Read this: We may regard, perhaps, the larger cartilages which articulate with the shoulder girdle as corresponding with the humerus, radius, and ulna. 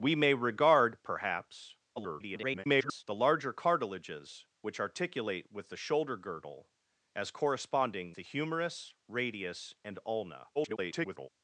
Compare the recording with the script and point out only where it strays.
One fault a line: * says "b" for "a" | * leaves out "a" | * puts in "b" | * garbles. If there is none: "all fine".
* garbles
* leaves out "with"
* garbles